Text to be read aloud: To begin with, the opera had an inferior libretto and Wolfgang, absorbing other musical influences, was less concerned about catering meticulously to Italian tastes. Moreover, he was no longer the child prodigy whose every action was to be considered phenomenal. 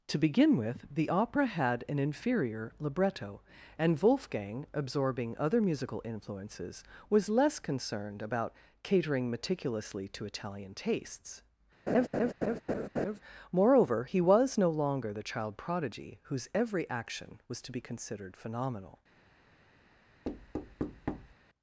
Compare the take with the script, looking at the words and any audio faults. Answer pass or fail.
fail